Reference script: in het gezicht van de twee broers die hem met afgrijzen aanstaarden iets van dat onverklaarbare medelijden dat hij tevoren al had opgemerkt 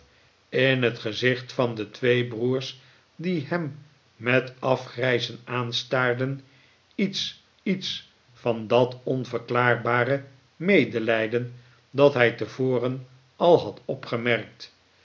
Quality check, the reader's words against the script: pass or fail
fail